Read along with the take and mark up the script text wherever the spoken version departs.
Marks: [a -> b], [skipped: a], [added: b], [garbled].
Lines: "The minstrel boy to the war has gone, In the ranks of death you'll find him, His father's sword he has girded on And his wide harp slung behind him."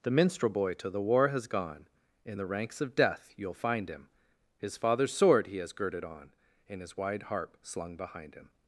"The minstrel boy to the war has gone, In the ranks of death you'll find him, His father's sword he has girded on And his wide harp slung behind him."